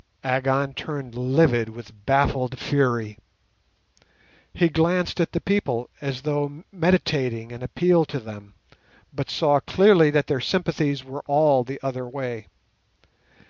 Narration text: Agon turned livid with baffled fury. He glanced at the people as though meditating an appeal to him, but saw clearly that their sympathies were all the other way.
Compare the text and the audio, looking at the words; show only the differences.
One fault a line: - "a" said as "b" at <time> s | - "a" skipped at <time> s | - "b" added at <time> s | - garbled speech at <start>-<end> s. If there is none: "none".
- "him" said as "them" at 8.2 s